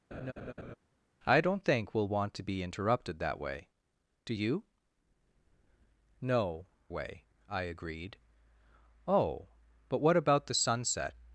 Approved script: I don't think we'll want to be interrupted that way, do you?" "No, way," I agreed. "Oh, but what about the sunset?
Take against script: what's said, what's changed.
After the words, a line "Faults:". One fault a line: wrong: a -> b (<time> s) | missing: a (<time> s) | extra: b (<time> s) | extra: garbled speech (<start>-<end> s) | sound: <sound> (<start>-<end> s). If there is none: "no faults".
I don't think we'll want to be interrupted that way, do you?" "No, way," I agreed. "Oh, but what about the sunset?
Faults:
sound: laugh (0.1-0.8 s)